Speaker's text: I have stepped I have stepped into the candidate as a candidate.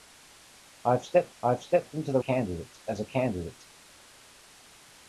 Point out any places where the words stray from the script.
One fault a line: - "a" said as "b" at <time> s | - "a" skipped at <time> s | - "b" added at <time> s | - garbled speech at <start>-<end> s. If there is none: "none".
none